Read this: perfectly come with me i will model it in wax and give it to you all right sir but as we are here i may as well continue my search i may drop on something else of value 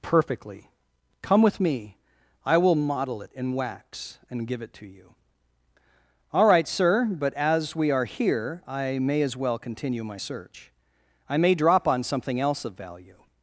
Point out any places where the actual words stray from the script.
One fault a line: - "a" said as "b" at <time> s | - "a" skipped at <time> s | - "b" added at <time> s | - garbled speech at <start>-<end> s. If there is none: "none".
none